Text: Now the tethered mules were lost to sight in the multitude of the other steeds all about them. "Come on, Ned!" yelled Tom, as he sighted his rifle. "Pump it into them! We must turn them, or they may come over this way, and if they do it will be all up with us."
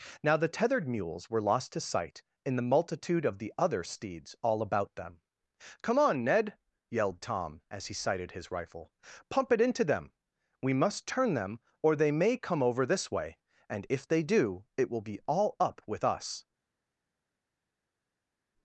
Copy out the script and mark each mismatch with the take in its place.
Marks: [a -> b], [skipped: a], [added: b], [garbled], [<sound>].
Now the tethered mules were lost to sight in the multitude of the other steeds all about them. "Come on, Ned!" yelled Tom, as he sighted his rifle. "Pump it into them! We must turn them, or they may come over this way, and if they do it will be all up with us."